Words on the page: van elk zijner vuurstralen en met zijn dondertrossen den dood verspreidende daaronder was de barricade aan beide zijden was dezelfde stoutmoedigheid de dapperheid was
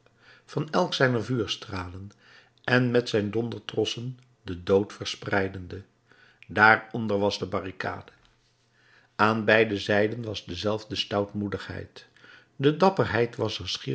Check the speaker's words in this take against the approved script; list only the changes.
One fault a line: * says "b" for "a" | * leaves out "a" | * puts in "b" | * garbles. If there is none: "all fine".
all fine